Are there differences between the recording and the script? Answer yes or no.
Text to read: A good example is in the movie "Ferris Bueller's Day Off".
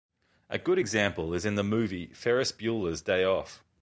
no